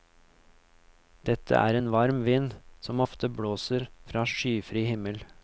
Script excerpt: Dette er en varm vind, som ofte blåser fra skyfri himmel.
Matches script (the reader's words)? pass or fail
pass